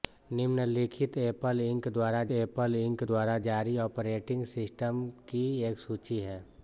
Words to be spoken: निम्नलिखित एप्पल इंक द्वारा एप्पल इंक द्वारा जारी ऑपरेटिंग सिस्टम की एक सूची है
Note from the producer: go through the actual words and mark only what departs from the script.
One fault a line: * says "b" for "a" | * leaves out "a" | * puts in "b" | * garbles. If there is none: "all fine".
all fine